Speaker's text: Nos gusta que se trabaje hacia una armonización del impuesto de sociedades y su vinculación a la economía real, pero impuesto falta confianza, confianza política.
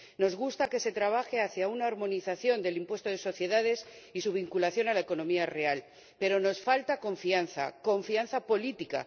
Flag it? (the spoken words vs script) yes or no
yes